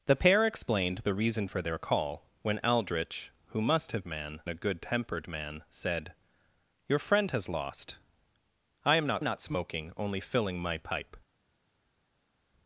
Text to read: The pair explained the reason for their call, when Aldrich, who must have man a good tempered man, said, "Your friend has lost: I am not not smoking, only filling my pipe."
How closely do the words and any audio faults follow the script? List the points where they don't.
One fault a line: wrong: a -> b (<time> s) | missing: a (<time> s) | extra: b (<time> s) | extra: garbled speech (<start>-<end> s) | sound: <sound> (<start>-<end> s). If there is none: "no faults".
no faults